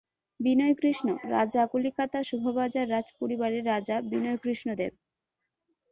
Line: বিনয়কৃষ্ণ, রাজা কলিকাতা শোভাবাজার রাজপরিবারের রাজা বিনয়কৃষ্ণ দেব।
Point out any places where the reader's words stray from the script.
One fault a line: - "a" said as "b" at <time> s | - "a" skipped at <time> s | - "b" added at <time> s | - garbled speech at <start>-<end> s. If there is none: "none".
none